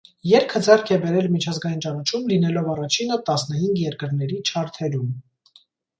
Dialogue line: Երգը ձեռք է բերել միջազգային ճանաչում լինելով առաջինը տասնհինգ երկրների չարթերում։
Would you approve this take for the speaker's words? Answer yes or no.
yes